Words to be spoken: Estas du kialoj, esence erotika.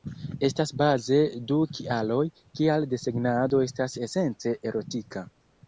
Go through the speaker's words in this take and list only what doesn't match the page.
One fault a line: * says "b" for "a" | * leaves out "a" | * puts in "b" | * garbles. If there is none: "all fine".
* puts in "baze"
* puts in "kial desegnado estas"